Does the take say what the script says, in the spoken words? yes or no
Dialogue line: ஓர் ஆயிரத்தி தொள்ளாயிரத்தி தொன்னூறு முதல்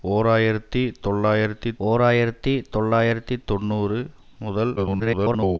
no